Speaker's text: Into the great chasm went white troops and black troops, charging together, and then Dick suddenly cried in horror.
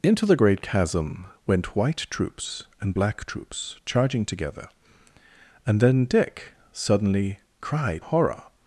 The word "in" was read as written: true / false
false